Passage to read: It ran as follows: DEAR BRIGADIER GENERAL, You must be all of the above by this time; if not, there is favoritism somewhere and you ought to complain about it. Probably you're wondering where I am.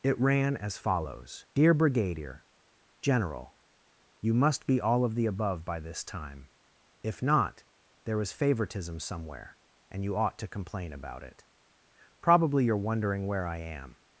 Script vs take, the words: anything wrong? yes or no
no